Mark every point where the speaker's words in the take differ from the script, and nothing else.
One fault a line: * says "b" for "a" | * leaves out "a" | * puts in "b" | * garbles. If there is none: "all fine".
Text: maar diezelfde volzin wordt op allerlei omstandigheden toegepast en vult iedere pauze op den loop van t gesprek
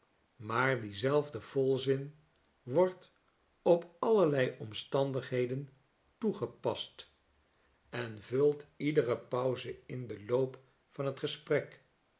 * says "in" for "op"